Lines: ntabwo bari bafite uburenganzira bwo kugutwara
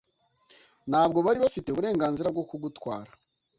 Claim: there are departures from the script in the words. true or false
false